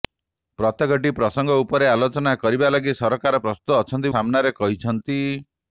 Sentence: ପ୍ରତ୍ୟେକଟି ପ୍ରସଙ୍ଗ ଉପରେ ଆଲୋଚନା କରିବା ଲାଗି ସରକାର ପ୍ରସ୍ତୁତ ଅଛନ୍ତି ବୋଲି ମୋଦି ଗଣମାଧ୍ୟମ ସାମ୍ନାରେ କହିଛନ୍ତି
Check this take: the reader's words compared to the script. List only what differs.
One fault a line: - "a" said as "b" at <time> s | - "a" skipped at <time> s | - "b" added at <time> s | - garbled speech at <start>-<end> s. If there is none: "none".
- "ବୋଲି ମୋଦି ଗଣମାଧ୍ୟମ" skipped at 4.1 s